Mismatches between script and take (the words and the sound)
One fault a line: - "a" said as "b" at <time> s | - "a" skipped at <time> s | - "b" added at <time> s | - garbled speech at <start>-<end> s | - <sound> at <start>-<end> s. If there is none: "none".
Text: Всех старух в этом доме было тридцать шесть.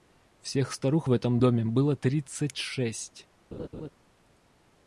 - laugh at 3.5-3.9 s